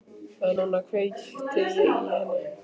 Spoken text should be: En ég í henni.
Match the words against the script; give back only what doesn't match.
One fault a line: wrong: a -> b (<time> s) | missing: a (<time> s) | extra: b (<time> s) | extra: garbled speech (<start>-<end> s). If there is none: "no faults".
extra: núna kveikti (0.6 s)